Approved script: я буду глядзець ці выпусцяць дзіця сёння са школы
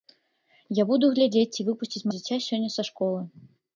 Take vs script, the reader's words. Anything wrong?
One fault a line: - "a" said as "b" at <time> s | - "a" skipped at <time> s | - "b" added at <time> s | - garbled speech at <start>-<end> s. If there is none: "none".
none